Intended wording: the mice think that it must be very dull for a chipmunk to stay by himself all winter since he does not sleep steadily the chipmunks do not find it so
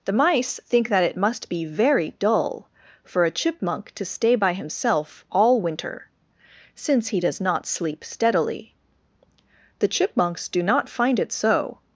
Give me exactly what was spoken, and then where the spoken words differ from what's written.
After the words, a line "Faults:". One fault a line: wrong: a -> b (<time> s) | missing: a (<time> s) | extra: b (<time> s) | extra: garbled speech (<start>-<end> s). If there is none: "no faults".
the mice think that it must be very dull for a chipmunk to stay by himself all winter since he does not sleep steadily the chipmunks do not find it so
Faults:
no faults